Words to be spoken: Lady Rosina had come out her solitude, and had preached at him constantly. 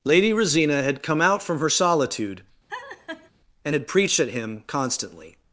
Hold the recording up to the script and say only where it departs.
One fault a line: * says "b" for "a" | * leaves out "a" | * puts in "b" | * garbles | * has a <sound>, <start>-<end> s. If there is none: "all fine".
* puts in "from"
* has a laugh, 2.7-3.3 s